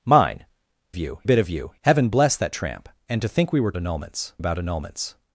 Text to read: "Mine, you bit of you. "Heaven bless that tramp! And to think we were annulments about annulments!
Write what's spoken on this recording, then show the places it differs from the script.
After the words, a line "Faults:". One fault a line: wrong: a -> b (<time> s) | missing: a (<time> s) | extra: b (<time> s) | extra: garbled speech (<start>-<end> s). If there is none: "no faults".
"Mine, you bit of you. "Heaven bless that tramp! And to think we were annulments about annulments!
Faults:
no faults